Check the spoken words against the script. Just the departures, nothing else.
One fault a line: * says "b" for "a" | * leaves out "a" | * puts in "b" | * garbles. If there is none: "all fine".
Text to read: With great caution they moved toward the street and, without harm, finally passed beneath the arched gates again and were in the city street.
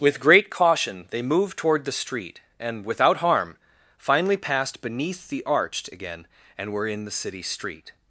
* leaves out "gates"